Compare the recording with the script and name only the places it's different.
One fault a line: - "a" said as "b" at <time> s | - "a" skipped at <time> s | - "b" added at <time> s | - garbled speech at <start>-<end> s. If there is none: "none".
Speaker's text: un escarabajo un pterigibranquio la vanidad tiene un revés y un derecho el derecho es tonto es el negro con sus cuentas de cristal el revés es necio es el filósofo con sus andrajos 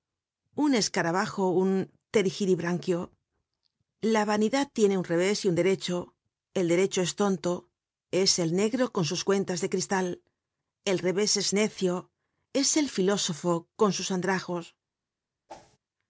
none